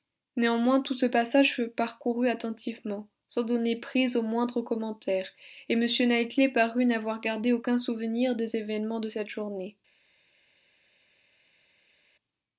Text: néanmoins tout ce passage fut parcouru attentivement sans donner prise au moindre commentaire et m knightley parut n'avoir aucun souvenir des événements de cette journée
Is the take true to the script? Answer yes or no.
no